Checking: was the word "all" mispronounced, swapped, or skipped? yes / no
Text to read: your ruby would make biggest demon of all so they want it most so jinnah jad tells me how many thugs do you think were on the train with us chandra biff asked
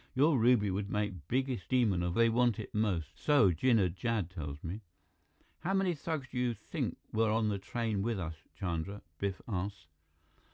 yes